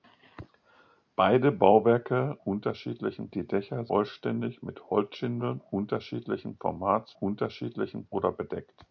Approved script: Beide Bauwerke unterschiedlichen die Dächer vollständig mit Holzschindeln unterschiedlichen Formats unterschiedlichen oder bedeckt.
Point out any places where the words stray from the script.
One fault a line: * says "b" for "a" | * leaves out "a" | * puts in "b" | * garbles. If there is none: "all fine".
all fine